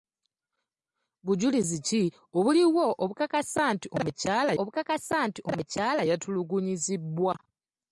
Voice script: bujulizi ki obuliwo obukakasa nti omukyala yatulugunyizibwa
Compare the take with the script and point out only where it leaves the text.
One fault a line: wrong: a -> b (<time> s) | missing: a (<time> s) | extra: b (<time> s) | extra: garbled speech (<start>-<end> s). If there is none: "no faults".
extra: obukakasa nti omukyala (4.6 s)